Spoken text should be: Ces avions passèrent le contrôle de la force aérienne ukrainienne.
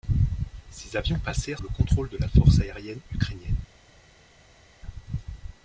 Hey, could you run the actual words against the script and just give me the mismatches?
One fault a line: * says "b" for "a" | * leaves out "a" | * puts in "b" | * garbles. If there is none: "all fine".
all fine